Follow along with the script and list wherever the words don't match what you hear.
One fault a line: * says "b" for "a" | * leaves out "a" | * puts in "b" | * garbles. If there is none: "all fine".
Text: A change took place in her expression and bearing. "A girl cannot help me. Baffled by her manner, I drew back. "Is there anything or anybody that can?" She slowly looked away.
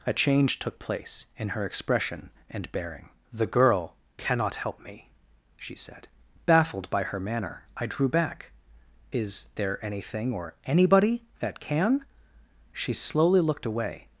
* says "The" for "A"
* puts in "she said"